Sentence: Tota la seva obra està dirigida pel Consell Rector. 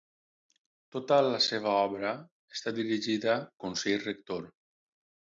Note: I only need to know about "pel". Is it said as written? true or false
false